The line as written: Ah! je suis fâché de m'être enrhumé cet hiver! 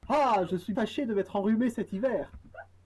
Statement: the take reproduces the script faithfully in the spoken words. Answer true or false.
true